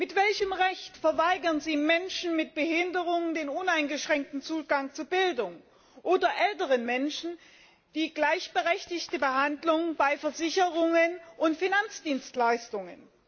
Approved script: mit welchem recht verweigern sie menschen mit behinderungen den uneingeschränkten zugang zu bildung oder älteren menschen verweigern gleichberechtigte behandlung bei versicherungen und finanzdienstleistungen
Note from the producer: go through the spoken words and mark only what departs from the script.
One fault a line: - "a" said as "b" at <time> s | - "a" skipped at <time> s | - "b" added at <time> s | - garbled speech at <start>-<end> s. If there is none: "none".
- "verweigern" said as "die" at 7.9 s